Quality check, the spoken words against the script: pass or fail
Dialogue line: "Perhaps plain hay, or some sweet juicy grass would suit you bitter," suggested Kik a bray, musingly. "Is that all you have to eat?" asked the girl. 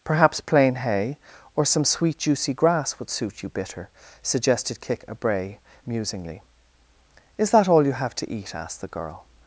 pass